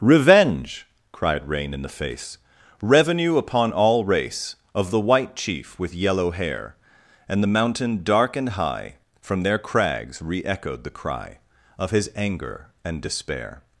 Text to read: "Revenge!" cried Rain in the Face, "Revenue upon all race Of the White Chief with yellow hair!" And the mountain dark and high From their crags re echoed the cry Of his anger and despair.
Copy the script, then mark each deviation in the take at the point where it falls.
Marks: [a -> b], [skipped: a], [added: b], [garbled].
"Revenge!" cried Rain in the Face, "Revenue upon all race Of the White Chief with yellow hair!" And the mountain dark and high From their crags re echoed the cry Of his anger and despair.